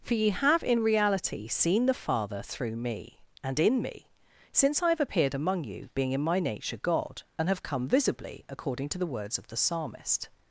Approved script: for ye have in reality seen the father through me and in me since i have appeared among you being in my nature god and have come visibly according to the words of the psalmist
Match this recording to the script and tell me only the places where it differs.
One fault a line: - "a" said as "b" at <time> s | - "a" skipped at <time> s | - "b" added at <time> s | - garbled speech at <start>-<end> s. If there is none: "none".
none